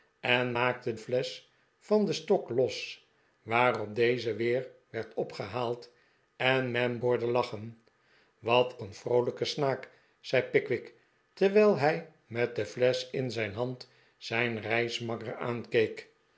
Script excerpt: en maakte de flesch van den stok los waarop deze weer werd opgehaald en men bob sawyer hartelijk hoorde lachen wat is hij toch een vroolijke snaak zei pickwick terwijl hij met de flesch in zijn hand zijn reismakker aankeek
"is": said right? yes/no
no